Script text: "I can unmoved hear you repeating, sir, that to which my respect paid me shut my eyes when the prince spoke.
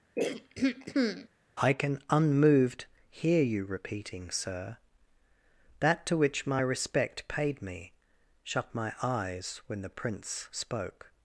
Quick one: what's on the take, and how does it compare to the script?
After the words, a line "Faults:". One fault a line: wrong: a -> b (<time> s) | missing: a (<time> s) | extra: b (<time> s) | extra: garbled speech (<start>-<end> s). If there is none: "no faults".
"I can unmoved hear you repeating, sir, that to which my respect paid me shut my eyes when the prince spoke.
Faults:
no faults